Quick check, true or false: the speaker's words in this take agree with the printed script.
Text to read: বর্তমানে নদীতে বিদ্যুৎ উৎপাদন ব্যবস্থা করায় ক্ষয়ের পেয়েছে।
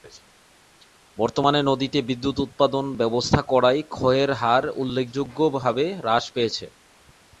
false